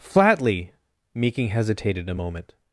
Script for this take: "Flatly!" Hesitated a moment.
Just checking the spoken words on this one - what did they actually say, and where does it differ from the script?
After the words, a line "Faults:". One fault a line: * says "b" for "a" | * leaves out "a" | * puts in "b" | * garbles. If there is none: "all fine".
"Flatly!" Meeking hesitated a moment.
Faults:
* puts in "Meeking"